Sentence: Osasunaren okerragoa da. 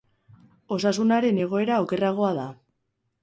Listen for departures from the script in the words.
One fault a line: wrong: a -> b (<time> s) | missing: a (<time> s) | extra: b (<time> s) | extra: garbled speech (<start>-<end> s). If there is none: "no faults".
extra: egoera (1.4 s)